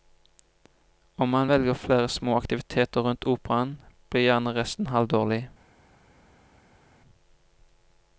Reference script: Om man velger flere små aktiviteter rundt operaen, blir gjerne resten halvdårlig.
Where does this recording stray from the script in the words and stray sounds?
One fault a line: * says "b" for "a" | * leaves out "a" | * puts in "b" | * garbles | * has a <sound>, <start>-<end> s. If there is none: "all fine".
all fine